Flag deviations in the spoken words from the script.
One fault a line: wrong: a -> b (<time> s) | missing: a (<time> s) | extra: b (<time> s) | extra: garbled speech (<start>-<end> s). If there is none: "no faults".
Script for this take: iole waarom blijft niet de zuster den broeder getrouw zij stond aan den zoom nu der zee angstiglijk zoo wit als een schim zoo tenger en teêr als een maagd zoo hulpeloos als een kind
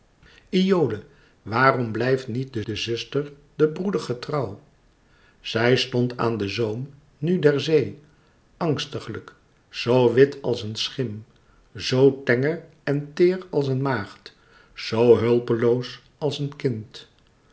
extra: de (2.7 s)